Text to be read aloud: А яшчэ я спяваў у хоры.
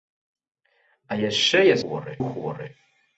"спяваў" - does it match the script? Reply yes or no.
no